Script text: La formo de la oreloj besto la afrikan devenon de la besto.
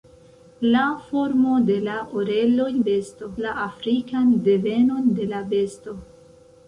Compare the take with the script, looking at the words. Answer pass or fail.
pass